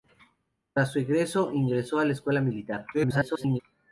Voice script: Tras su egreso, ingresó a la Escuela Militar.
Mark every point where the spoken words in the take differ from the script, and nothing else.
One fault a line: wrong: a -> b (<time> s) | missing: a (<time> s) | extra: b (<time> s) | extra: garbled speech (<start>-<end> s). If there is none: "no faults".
extra: garbled speech (2.9-3.6 s)